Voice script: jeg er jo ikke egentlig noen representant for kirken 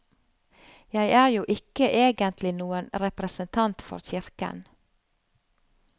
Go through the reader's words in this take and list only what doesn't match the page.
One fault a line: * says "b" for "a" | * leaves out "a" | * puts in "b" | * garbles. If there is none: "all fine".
all fine